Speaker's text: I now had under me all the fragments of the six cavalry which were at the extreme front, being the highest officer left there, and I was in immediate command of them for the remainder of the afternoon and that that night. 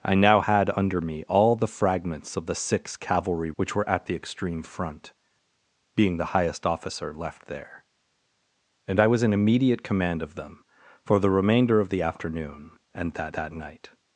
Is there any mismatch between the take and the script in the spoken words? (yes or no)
no